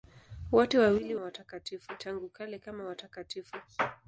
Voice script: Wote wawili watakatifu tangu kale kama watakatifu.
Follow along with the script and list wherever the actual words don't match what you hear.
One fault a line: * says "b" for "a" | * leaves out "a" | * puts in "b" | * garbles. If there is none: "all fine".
all fine